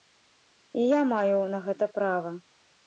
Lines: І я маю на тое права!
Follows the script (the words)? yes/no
no